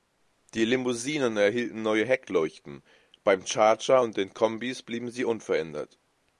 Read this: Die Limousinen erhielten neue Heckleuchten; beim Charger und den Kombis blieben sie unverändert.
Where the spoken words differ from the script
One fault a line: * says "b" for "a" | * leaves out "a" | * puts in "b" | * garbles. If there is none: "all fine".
all fine